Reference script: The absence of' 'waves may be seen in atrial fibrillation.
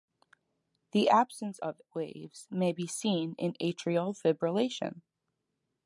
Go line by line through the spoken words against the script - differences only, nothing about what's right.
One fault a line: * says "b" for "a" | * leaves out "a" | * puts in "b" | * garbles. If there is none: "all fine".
all fine